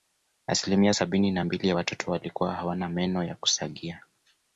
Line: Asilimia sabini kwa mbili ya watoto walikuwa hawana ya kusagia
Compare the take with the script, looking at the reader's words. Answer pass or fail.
fail